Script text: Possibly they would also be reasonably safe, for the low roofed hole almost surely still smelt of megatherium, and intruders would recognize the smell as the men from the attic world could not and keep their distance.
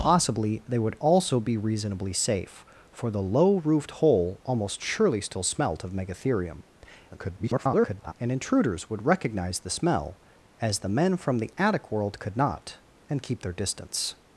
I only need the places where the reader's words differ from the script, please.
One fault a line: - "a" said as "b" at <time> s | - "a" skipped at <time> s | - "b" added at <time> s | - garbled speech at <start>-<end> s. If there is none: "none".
- garbled speech at 7.1-8.1 s